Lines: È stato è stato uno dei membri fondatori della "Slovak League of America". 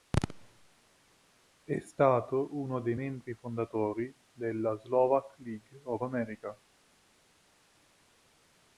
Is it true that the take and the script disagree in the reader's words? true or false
true